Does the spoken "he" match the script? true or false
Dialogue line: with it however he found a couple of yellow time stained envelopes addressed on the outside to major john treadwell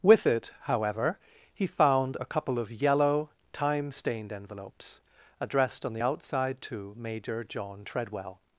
true